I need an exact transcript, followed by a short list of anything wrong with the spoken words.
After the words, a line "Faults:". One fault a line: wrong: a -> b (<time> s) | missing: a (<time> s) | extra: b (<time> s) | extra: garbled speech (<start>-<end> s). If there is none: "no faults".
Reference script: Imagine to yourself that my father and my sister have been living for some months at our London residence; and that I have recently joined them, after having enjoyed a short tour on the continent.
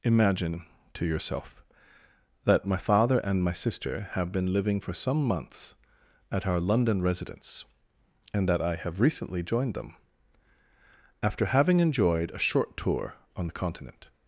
Imagine to yourself that my father and my sister have been living for some months at our London residence; and that I have recently joined them, after having enjoyed a short tour on the continent.
Faults:
no faults